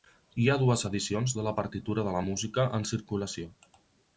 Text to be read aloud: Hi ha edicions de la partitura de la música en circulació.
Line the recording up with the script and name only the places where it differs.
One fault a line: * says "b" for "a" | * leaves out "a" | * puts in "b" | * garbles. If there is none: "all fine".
* puts in "dues"